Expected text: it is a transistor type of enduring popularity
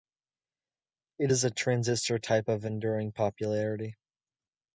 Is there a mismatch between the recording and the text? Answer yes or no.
no